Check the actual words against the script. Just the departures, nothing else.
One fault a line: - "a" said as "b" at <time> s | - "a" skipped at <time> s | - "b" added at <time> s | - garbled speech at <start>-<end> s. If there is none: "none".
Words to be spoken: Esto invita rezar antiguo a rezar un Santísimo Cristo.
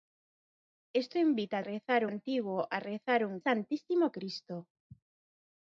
none